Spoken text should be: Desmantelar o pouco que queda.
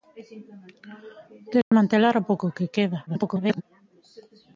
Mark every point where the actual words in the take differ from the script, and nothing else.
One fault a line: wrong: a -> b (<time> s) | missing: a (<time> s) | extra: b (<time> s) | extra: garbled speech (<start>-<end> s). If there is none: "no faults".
extra: garbled speech (3.1-3.6 s)